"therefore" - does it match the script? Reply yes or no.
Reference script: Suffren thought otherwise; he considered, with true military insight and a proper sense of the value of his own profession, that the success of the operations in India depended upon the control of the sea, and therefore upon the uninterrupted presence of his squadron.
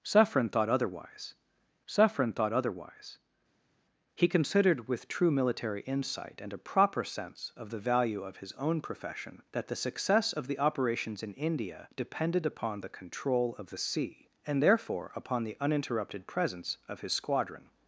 yes